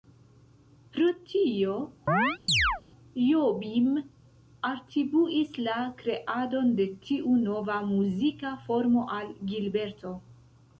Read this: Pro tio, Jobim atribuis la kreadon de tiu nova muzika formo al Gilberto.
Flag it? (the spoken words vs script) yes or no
no